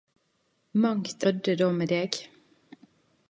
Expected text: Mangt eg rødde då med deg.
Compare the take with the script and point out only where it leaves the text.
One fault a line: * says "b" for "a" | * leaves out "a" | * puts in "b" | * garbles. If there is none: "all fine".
* leaves out "eg"